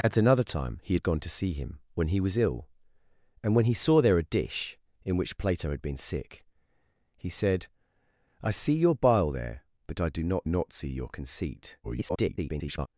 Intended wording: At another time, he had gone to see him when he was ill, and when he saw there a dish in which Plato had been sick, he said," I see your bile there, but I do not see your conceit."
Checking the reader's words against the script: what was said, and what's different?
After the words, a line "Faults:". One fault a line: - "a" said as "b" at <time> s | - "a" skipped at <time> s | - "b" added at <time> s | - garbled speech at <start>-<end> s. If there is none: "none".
At another time, he had gone to see him when he was ill, and when he saw there a dish in which Plato had been sick, he said," I see your bile there, but I do not not see your conceit." [garbled]
Faults:
- "not" added at 10.5 s
- garbled speech at 11.8-12.9 s